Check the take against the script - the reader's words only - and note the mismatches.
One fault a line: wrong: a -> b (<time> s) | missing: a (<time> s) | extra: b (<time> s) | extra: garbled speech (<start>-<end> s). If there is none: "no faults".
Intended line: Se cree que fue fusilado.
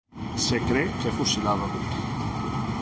missing: fue (1.1 s)